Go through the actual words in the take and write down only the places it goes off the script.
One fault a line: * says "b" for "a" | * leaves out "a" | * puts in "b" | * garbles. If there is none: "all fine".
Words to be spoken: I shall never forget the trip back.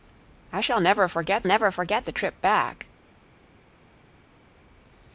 * puts in "never forget"